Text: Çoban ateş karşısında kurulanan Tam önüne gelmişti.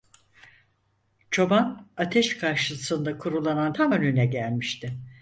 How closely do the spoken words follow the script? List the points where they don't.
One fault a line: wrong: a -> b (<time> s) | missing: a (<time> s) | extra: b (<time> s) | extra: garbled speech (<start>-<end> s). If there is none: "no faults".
no faults